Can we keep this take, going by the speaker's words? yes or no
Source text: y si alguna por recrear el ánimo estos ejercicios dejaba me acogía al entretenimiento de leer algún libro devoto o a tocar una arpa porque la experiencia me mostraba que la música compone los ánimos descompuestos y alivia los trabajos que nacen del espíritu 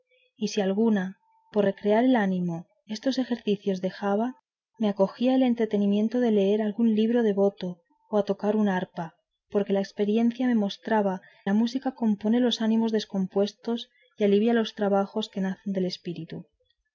no